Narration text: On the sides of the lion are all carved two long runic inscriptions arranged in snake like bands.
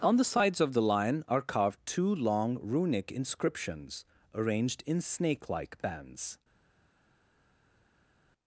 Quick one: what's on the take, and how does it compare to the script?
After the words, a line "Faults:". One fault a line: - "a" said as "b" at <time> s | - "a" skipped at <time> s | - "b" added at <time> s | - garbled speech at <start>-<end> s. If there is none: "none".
On the sides of the lion are carved two long runic inscriptions arranged in snake like bands.
Faults:
- "all" skipped at 1.4 s